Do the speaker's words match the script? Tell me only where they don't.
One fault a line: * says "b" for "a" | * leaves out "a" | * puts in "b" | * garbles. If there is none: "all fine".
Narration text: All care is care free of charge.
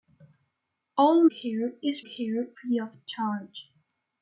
all fine